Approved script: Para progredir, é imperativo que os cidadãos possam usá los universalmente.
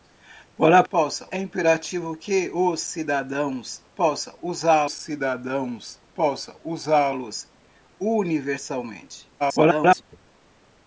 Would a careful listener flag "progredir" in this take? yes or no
yes